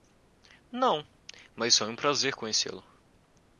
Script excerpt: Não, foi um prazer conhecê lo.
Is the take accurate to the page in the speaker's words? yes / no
no